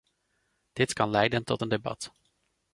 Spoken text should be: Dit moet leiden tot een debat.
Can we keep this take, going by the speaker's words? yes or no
no